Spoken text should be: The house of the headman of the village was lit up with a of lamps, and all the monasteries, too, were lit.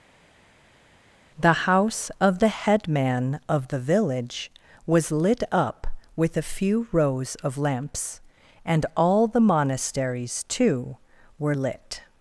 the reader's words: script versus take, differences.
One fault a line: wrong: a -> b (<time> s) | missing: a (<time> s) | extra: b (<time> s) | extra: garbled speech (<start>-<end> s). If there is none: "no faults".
extra: few rows (6.4 s)